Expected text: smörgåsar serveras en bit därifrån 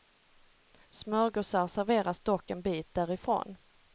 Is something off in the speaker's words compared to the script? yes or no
yes